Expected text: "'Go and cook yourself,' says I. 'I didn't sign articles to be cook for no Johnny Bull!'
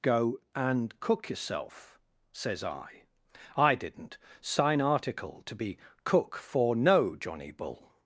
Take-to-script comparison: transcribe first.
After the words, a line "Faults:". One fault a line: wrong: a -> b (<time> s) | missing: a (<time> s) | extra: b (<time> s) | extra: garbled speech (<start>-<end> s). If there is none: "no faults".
"'Go and cook yourself,' says I. 'I didn't sign article to be cook for no Johnny Bull!'
Faults:
wrong: articles -> article (4.8 s)